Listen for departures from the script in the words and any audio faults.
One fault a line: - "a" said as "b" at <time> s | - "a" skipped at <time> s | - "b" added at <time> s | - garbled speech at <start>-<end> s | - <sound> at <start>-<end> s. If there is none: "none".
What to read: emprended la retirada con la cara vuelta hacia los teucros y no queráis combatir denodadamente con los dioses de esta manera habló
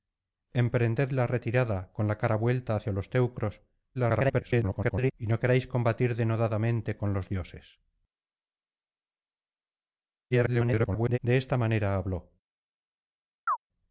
- garbled speech at 3.9-5.1 s
- garbled speech at 10.3-11.2 s
- chirp at 13.5-13.6 s